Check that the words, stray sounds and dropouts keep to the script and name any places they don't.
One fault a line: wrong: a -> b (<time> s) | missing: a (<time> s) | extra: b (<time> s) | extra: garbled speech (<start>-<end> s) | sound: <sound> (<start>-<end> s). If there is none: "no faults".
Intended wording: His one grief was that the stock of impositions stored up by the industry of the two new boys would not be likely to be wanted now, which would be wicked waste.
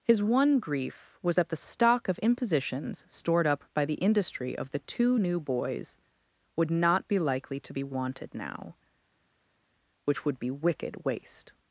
no faults